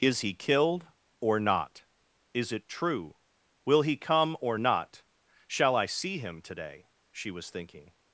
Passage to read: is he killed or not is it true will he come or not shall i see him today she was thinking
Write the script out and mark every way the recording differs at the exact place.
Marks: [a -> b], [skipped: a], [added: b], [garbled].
is he killed or not is it true will he come or not shall i see him today she was thinking